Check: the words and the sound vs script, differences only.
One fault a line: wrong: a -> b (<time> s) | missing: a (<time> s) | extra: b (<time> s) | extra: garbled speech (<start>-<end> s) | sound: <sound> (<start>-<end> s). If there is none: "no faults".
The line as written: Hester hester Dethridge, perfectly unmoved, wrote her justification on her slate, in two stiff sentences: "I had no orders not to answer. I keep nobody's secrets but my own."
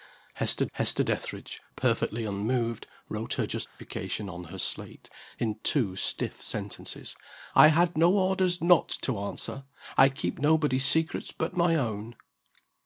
sound: dropout (3.7-3.8 s)